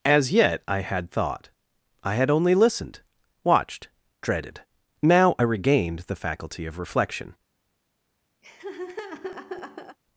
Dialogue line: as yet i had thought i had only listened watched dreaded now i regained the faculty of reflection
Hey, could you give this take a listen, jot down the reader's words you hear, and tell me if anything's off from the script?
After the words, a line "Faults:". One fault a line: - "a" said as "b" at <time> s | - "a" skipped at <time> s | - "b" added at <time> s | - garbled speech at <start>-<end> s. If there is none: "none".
as yet i had thought i had only listened watched dreaded now i regained the faculty of reflection
Faults:
none